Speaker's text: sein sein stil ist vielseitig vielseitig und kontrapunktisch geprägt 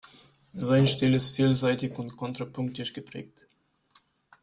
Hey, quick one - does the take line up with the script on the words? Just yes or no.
no